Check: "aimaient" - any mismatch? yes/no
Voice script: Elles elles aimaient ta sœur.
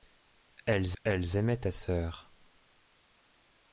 no